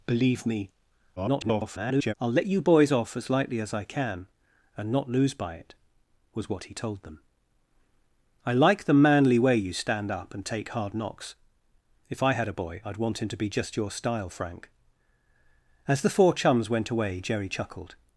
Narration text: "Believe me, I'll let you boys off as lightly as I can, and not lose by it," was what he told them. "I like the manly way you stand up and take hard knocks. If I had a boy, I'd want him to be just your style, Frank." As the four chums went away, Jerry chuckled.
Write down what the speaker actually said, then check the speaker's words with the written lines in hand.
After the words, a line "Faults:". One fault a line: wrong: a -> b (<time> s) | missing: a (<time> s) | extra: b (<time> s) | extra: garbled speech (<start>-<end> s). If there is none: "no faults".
"Believe me, [garbled] I'll let you boys off as lightly as I can, and not lose by it," was what he told them. "I like the manly way you stand up and take hard knocks. If I had a boy, I'd want him to be just your style, Frank." As the four chums went away, Jerry chuckled.
Faults:
extra: garbled speech (1.2-2.1 s)